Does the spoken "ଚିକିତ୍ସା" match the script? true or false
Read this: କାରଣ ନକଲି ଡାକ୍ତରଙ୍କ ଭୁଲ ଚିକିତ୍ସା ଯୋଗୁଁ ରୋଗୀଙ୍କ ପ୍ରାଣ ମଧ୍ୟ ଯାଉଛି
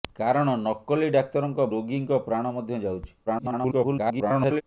false